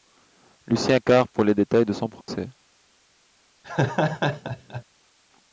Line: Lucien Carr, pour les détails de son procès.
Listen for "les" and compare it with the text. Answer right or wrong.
right